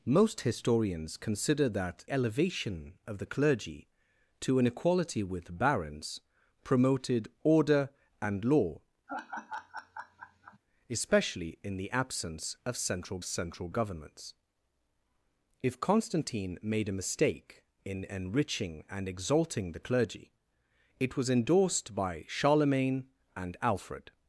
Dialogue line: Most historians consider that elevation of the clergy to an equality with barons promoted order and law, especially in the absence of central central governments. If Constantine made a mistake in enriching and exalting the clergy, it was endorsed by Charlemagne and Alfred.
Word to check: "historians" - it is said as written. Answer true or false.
true